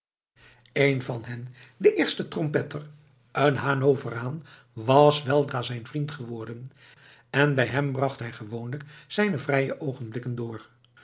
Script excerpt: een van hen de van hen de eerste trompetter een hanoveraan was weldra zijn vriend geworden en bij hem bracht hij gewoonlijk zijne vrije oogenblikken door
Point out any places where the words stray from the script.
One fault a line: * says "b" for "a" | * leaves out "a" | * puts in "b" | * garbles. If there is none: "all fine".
* leaves out "van hen de"